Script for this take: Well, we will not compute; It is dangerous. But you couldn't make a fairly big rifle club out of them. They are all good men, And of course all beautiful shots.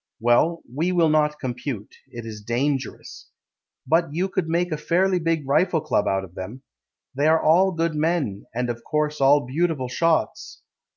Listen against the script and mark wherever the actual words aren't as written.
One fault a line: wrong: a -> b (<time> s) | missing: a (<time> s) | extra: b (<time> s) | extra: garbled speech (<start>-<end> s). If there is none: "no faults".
wrong: couldn't -> could (4.3 s)